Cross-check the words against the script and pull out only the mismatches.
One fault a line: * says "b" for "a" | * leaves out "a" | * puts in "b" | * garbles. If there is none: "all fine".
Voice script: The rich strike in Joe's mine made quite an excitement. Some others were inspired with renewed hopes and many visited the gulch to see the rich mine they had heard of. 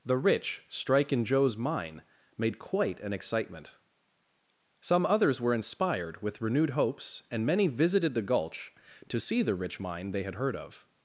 all fine